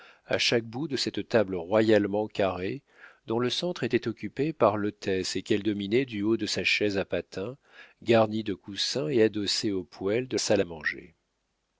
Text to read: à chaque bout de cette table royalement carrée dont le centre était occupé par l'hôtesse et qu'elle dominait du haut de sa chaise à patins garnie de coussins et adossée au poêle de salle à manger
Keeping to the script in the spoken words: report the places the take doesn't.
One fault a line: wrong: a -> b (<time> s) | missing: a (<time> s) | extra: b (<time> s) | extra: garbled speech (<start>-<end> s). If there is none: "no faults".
no faults